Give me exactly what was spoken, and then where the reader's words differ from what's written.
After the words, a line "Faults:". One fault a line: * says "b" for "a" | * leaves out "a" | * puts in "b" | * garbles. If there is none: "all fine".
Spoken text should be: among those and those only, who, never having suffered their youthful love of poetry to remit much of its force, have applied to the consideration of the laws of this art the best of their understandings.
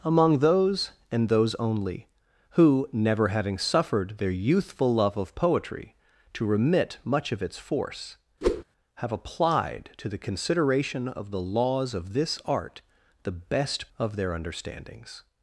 among those and those only, who, never having suffered their youthful love of poetry to remit much of its force, have applied to the consideration of the laws of this art the best of their understandings.
Faults:
all fine